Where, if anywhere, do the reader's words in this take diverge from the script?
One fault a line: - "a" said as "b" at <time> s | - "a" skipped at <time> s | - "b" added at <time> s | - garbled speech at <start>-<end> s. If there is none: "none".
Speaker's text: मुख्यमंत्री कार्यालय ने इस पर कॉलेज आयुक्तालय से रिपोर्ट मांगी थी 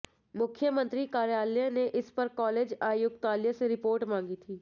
none